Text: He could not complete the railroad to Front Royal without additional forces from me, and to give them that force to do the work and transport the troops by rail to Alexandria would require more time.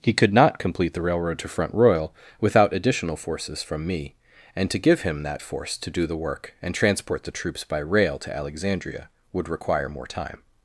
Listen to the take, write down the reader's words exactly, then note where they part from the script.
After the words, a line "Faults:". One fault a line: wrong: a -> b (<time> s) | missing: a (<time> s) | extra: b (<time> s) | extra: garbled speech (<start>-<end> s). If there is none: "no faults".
He could not complete the railroad to Front Royal without additional forces from me, and to give him that force to do the work and transport the troops by rail to Alexandria would require more time.
Faults:
wrong: them -> him (5.0 s)